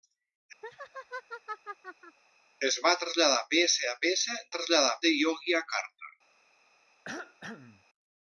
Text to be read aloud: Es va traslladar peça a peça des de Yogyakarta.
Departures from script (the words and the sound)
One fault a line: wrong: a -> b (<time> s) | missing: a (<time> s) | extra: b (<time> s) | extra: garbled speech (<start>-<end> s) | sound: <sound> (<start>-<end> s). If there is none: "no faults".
sound: laugh (0.6-2.2 s)
wrong: des -> traslladar (4.5 s)
sound: cough (7.1-7.9 s)